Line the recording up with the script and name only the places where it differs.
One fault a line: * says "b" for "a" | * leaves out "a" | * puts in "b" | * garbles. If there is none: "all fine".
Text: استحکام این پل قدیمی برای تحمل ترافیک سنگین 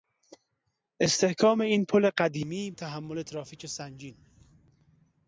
* leaves out "برای"